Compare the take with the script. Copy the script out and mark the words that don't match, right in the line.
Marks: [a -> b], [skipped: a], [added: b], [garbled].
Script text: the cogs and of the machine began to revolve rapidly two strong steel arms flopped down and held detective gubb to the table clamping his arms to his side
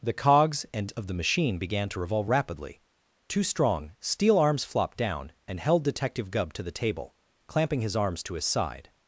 the cogs and of the machine began to revolve rapidly two strong steel arms flopped down and held detective gubb to the table clamping his arms to his side